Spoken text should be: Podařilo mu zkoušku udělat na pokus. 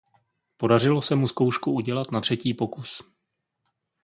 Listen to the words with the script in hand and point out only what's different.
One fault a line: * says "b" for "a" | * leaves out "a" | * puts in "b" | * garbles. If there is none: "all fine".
* puts in "se"
* puts in "třetí"